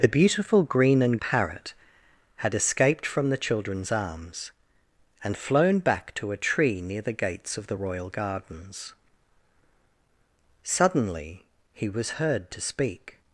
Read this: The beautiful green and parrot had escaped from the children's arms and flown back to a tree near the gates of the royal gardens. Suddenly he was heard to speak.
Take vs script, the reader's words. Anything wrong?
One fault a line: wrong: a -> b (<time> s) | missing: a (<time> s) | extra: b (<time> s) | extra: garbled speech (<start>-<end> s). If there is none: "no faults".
no faults